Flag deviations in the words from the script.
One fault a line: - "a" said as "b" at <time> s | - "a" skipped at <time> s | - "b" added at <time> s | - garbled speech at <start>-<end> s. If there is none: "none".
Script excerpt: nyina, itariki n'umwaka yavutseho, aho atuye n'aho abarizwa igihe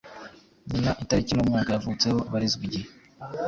- "aho atuye n'aho" skipped at 2.2 s